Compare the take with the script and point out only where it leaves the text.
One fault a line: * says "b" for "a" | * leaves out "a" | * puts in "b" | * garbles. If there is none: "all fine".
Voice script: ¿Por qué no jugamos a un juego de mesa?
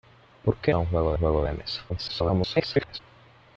* leaves out "no jugamos"
* puts in "juego"
* garbles